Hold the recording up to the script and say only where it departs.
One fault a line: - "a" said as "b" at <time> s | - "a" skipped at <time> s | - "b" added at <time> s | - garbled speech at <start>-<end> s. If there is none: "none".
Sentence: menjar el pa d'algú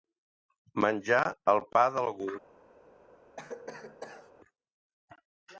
none